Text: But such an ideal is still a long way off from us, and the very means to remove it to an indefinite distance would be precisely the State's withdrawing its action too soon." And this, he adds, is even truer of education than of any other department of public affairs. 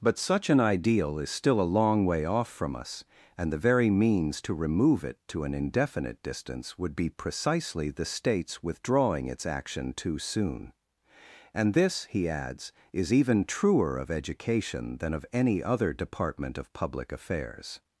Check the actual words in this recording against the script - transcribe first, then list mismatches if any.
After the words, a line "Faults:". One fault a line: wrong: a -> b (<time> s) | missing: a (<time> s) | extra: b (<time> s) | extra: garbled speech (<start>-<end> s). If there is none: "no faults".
But such an ideal is still a long way off from us, and the very means to remove it to an indefinite distance would be precisely the State's withdrawing its action too soon." And this, he adds, is even truer of education than of any other department of public affairs.
Faults:
no faults